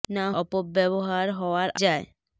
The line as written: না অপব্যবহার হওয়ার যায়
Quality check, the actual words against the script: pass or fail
pass